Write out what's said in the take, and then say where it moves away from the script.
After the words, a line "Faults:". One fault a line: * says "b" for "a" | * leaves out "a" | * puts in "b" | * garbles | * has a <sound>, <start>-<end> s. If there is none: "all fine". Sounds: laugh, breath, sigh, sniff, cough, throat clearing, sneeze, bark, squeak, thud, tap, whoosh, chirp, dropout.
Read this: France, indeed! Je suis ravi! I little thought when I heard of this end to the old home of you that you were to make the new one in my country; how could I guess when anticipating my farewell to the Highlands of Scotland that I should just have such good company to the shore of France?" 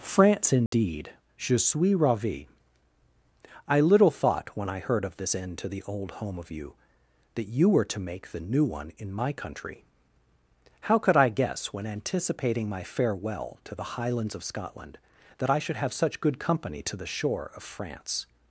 France, indeed! Je suis ravi! I little thought when I heard of this end to the old home of you that you were to make the new one in my country; how could I guess when anticipating my farewell to the Highlands of Scotland that I should have such good company to the shore of France?"
Faults:
* has a dropout, 0.7-0.7 s
* leaves out "just"